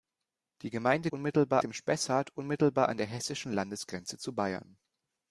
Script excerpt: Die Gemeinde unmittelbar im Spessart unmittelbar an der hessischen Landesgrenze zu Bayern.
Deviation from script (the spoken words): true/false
false